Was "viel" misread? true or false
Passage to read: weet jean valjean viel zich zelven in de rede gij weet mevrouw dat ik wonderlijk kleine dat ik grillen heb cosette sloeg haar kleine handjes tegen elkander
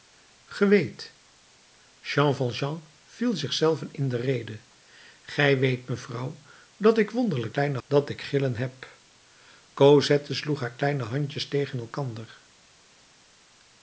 false